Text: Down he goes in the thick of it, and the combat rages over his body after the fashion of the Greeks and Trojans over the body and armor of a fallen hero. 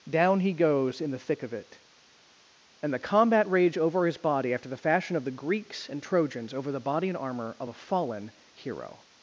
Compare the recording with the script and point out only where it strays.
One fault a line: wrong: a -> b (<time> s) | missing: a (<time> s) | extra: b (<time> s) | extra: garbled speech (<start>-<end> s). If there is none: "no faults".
wrong: rages -> rage (3.5 s)